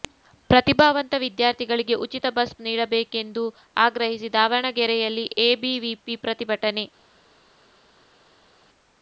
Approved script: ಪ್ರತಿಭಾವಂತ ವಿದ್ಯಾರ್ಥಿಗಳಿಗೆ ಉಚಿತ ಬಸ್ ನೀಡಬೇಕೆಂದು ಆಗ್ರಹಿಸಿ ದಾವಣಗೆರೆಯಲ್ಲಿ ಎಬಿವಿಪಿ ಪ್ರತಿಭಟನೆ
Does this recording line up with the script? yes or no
yes